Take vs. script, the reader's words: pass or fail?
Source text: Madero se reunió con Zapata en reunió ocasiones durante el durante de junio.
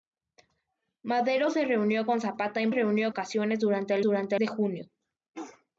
pass